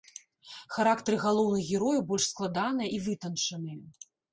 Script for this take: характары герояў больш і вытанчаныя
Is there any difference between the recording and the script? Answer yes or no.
yes